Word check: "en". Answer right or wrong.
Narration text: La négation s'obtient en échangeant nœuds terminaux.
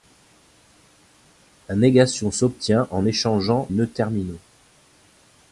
right